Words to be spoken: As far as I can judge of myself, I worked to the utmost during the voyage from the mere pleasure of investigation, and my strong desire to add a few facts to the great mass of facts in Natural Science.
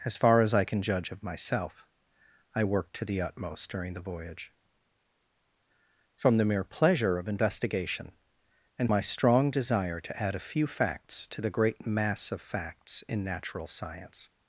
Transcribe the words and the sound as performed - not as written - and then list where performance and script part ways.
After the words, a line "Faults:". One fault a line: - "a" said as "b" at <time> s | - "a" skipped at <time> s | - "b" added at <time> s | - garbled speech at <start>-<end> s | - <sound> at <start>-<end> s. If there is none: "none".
As far as I can judge of myself, I worked to the utmost during the voyage from the mere pleasure of investigation, and my strong desire to add a few facts to the great mass of facts in Natural Science.
Faults:
none